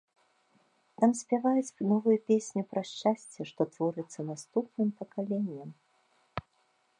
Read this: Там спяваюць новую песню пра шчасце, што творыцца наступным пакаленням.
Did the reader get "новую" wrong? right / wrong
right